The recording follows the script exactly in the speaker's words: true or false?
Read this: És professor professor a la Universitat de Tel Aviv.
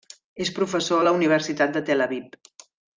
false